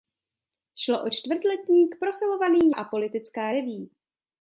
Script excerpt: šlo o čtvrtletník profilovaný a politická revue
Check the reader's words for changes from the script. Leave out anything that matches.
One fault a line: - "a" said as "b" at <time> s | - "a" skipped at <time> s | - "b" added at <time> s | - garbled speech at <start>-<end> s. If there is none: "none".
none